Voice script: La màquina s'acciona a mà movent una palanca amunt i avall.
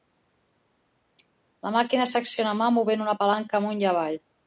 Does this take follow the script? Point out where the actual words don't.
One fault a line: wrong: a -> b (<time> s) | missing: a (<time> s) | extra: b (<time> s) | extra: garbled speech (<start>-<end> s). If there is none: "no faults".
no faults